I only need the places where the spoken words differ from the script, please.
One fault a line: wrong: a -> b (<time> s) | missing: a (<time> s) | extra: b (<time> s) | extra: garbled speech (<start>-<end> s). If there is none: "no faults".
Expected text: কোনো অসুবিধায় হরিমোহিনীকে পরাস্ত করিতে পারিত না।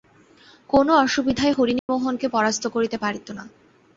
no faults